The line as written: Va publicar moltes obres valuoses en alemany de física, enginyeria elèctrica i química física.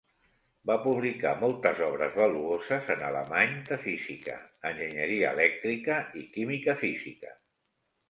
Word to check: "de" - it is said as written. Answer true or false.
true